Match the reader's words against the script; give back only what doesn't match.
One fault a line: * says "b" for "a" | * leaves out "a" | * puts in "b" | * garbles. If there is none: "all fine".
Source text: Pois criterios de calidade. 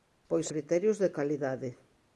all fine